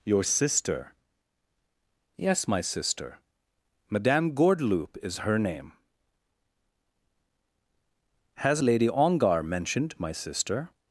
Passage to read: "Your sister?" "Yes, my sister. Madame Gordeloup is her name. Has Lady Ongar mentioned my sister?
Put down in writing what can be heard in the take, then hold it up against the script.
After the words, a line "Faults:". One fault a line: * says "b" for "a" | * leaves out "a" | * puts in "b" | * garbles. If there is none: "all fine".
"Your sister?" "Yes, my sister. Madame Gordeloup is her name. Has Lady Ongar mentioned my sister?
Faults:
all fine